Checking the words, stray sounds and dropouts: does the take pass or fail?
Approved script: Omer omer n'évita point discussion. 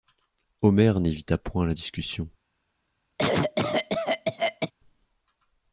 fail